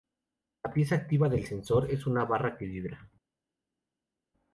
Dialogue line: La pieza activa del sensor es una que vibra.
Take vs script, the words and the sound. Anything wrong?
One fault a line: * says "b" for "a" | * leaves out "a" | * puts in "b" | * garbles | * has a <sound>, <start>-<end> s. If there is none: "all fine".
* puts in "barra"